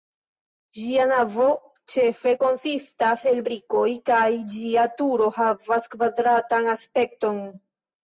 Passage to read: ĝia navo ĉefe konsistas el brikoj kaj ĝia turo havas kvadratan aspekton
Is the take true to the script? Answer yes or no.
yes